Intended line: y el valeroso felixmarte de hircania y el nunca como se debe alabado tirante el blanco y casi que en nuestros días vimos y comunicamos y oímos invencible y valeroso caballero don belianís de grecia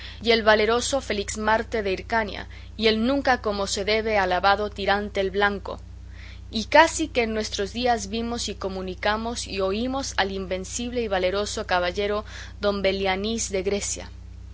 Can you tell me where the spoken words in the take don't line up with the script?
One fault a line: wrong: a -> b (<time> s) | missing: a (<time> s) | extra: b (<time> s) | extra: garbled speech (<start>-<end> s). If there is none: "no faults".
extra: al (10.2 s)